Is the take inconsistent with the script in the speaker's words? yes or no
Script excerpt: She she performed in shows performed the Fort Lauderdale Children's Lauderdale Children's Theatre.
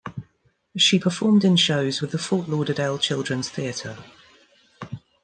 yes